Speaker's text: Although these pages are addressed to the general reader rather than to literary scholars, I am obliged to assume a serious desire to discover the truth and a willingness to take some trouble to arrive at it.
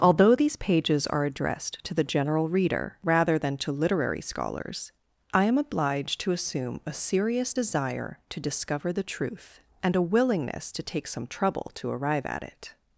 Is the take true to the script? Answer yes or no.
yes